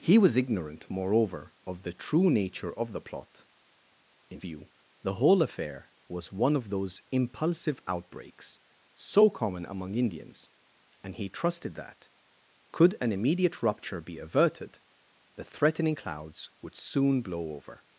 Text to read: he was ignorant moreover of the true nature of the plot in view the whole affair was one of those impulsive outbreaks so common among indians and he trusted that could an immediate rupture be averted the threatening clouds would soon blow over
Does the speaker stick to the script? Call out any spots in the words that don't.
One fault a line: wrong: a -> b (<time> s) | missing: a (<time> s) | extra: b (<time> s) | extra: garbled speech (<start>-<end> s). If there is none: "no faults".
no faults